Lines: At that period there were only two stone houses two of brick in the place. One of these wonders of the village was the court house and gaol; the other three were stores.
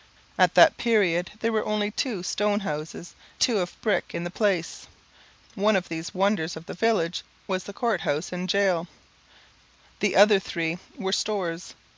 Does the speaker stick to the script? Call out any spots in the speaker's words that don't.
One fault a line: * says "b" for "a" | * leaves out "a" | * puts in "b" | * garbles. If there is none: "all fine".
all fine